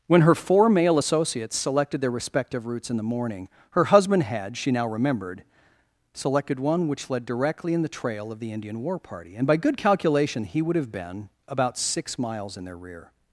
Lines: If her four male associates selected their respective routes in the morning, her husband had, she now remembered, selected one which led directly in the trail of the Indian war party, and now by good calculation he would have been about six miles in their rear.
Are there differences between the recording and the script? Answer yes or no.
yes